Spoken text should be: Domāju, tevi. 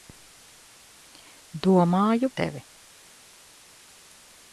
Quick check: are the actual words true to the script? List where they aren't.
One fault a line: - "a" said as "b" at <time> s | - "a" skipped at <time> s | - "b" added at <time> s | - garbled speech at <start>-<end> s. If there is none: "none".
none